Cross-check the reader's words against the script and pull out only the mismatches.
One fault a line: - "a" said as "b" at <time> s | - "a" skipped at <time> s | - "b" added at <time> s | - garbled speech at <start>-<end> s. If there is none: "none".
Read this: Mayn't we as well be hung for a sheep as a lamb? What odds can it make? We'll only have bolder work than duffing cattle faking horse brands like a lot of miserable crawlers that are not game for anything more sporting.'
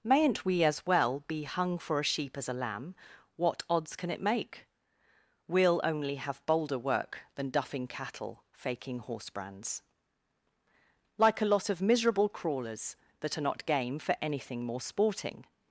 none